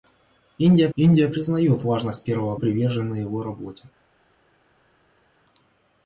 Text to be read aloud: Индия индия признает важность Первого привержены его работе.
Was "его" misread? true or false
false